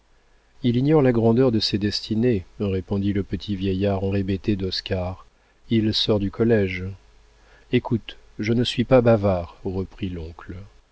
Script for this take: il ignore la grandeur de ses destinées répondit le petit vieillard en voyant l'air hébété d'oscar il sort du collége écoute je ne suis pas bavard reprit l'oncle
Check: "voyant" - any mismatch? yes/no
yes